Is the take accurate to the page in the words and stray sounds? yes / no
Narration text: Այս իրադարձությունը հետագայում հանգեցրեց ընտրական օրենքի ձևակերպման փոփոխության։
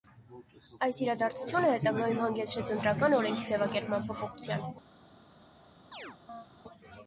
no